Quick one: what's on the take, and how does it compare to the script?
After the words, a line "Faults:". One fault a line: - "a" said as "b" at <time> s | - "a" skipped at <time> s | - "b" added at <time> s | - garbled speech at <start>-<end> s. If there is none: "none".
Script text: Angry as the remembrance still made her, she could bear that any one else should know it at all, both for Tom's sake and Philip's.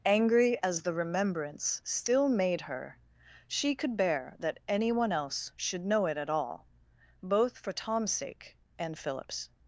Angry as the remembrance still made her, she could bear that any one else should know it at all, both for Tom's sake and Philip's.
Faults:
none